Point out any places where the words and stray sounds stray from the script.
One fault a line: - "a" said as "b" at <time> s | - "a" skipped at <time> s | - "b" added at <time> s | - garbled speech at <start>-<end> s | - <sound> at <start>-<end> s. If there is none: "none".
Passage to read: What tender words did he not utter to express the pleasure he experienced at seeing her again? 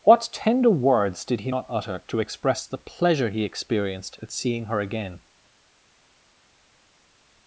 none